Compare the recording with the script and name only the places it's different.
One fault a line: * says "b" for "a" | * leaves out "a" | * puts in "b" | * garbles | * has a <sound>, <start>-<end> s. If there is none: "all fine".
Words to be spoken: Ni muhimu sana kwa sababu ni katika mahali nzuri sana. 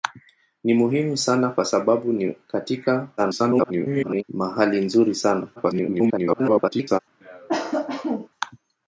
* garbles
* garbles
* has a cough, 7.2-8.3 s